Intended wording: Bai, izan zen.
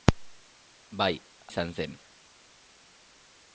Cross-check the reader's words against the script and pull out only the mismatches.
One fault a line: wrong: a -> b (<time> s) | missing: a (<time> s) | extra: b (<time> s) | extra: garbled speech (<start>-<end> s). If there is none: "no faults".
no faults